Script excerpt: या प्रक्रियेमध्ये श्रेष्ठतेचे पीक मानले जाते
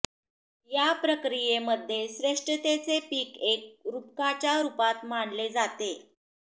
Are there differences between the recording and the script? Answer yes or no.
yes